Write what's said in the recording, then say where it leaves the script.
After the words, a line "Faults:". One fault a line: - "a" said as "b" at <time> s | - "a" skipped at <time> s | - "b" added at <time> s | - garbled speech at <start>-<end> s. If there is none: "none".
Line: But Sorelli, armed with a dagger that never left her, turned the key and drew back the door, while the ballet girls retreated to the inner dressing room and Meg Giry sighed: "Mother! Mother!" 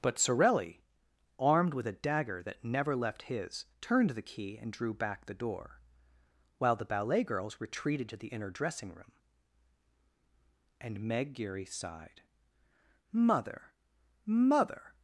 But Sorelli, armed with a dagger that never left his, turned the key and drew back the door, while the ballet girls retreated to the inner dressing room and Meg Giry sighed: "Mother! Mother!"
Faults:
- "her" said as "his" at 3.2 s